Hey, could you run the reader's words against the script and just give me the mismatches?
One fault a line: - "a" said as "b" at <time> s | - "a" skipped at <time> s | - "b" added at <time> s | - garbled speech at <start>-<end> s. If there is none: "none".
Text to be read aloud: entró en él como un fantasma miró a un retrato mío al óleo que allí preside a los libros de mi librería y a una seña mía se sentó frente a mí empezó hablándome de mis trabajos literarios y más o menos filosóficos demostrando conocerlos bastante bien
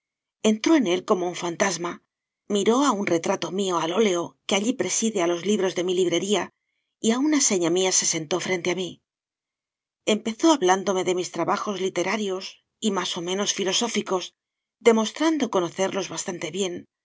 none